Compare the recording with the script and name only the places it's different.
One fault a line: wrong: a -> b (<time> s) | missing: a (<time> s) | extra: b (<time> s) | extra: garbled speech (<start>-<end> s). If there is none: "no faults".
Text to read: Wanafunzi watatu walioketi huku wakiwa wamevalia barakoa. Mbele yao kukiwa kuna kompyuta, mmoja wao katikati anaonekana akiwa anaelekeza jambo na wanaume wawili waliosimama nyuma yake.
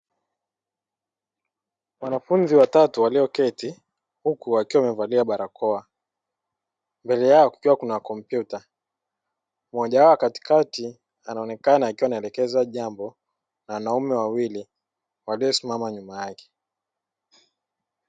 no faults